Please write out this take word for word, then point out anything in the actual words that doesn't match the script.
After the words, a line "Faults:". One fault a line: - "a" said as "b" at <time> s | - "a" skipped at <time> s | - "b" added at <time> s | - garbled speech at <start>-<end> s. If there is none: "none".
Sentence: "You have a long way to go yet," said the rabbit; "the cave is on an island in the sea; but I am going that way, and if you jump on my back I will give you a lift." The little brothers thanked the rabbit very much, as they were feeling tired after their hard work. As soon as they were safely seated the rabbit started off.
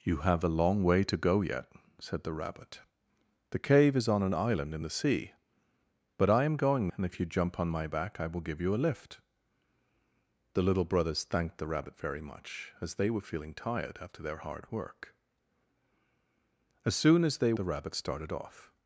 "You have a long way to go yet," said the rabbit; "the cave is on an island in the sea; but I am going and if you jump on my back I will give you a lift." The little brothers thanked the rabbit very much, as they were feeling tired after their hard work. As soon as they the rabbit started off.
Faults:
- "that way" skipped at 6.9 s
- "were safely seated" skipped at 17.5 s